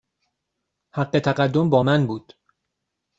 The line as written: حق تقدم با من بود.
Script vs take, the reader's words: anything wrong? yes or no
no